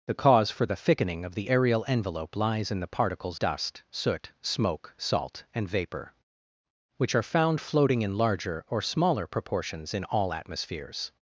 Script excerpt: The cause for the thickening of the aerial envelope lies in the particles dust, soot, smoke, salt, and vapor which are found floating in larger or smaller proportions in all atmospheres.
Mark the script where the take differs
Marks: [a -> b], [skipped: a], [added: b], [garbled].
The cause for the thickening of the aerial envelope lies in the particles dust, soot, smoke, salt, and vapor which are found floating in larger or smaller proportions in all atmospheres.